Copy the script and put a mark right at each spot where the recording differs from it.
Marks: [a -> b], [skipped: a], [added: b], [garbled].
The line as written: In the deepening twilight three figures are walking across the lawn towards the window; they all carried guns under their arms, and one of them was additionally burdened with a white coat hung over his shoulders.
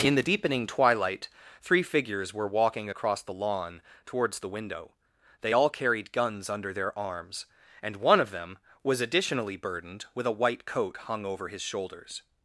In the deepening twilight three figures [are -> were] walking across the lawn towards the window; they all carried guns under their arms, and one of them was additionally burdened with a white coat hung over his shoulders.